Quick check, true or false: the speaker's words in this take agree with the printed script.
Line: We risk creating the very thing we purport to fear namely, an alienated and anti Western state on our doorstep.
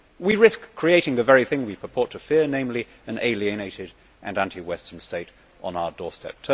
true